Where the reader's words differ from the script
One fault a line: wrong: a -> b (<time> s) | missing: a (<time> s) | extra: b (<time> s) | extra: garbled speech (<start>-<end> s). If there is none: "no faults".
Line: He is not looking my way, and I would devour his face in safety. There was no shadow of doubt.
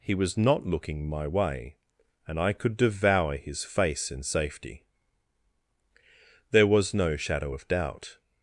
wrong: is -> was (0.1 s)
wrong: would -> could (2.5 s)